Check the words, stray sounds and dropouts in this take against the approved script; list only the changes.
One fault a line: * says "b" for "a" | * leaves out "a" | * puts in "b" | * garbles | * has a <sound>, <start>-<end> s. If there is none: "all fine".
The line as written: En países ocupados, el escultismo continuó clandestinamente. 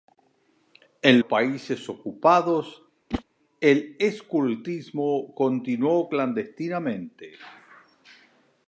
* has a whoosh, 3.1-3.2 s